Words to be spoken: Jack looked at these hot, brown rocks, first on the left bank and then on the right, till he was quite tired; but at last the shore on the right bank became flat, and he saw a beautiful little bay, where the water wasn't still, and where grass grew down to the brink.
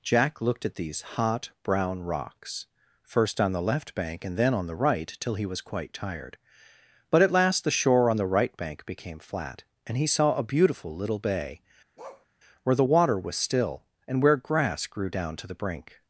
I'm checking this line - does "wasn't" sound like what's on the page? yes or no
no